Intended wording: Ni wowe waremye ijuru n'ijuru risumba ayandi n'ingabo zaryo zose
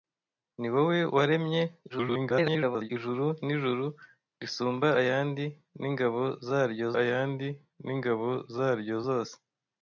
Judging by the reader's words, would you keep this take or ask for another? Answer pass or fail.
fail